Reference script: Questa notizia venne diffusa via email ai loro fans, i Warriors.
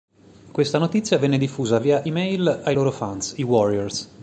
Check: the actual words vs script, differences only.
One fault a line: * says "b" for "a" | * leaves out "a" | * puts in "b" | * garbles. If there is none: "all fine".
all fine